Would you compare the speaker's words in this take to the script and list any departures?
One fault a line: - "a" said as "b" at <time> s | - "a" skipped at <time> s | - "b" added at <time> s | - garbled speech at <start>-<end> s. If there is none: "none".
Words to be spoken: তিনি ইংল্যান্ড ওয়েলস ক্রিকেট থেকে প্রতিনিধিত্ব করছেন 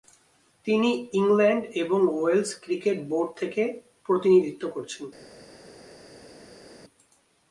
- "এবং" added at 1.7 s
- "বোর্ড" added at 3.1 s